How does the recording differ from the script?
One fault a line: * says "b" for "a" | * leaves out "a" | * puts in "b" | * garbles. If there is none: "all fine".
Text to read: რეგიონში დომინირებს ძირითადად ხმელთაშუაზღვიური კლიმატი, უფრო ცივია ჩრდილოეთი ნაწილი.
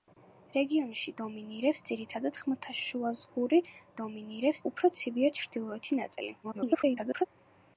* says "დომინირებს" for "კლიმატი"
* garbles